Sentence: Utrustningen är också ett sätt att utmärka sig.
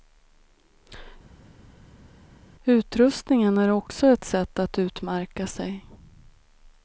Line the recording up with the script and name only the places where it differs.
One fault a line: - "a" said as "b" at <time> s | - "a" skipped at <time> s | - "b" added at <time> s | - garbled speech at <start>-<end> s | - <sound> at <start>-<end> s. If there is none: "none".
none